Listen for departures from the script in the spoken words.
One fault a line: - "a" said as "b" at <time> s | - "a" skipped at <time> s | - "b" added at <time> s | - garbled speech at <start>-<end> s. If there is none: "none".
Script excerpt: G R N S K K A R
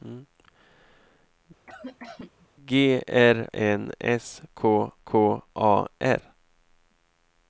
none